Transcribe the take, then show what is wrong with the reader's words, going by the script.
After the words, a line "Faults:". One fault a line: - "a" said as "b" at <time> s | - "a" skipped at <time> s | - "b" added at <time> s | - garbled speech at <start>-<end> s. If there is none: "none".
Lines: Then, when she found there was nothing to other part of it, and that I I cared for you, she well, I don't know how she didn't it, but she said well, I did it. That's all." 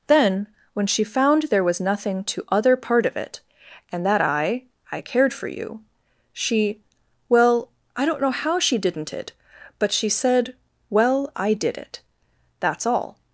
Then, when she found there was nothing to other part of it, and that I I cared for you, she well, I don't know how she didn't it, but she said well, I did it. That's all."
Faults:
none